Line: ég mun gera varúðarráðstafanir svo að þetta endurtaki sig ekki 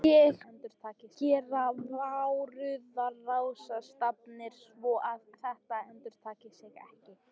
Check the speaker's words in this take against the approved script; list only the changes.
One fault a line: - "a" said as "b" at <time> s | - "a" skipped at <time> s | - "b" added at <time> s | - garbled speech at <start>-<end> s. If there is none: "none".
- "mun" said as "endurtaki" at 0.5 s